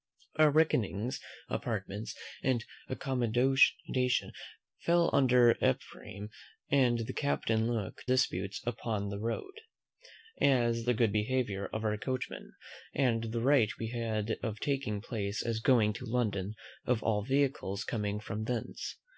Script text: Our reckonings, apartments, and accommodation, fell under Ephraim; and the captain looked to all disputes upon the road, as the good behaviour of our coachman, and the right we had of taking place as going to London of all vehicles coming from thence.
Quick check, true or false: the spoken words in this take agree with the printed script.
false